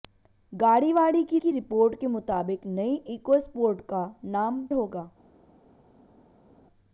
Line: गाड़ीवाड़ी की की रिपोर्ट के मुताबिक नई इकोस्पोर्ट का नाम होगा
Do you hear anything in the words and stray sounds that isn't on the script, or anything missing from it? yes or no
no